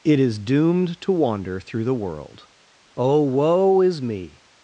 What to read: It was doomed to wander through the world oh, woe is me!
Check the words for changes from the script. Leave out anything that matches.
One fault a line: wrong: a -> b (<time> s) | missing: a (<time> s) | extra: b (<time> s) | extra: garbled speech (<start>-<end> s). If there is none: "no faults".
wrong: was -> is (0.2 s)